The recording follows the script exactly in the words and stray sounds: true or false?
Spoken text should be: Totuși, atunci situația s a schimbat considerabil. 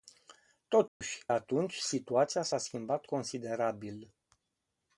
false